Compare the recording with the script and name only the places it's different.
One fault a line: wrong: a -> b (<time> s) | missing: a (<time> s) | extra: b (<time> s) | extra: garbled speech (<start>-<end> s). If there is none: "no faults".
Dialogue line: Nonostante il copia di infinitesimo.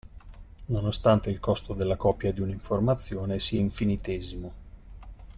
extra: costo della (1.4 s)
extra: un'informazione sia (2.4 s)